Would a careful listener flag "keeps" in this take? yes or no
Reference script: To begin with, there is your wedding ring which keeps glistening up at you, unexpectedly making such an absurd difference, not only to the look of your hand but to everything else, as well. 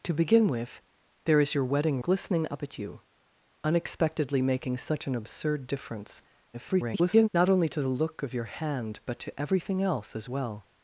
yes